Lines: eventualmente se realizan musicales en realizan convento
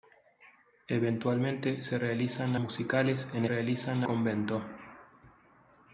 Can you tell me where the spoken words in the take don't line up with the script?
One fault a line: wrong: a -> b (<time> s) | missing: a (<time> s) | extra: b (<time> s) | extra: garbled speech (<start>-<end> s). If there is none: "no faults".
no faults